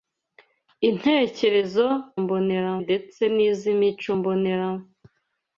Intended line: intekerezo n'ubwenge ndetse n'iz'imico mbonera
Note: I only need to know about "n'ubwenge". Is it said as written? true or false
false